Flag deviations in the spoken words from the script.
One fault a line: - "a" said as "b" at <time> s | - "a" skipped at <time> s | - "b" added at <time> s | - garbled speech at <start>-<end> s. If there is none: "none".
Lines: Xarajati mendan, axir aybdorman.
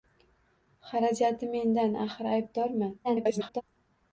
- garbled speech at 3.0-3.6 s